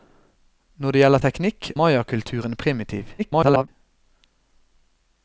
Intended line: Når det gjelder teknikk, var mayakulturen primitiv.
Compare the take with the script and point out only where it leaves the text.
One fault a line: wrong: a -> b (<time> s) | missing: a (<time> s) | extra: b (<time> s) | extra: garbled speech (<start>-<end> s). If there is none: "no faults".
missing: var (1.7 s)
extra: garbled speech (3.2-3.7 s)